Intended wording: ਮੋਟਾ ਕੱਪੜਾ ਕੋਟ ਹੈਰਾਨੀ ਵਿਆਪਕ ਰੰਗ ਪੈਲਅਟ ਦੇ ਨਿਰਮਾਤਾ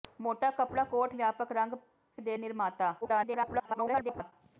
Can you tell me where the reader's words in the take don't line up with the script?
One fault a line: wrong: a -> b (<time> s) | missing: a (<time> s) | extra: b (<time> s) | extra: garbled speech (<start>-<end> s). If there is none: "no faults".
missing: ਹੈਰਾਨੀ (1.1 s)
missing: ਪੈਲਅਟ (1.7 s)
extra: garbled speech (3.0-4.3 s)